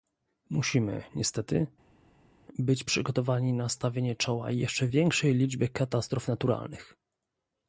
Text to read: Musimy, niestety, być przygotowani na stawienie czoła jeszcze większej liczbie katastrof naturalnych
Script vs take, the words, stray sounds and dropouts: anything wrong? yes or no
no